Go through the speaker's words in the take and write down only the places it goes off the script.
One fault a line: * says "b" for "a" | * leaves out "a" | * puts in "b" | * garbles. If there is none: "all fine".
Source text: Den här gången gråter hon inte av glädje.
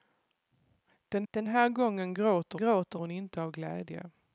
* puts in "den"
* puts in "gråter"